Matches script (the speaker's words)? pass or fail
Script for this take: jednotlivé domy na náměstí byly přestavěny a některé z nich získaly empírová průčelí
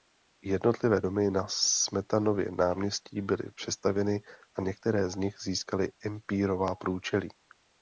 fail